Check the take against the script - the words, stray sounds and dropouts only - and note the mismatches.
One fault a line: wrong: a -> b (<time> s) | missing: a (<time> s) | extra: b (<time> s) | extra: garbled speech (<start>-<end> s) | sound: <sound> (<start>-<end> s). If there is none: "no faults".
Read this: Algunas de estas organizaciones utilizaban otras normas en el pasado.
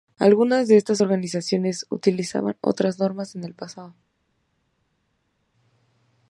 no faults